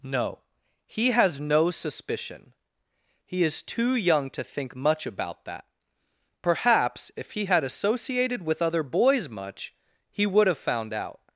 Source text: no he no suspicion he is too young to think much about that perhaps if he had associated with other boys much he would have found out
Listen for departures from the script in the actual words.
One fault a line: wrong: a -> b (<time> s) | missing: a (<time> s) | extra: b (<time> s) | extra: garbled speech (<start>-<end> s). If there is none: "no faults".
extra: has (1.1 s)